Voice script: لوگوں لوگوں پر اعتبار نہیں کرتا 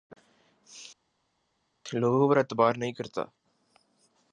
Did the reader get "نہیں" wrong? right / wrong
right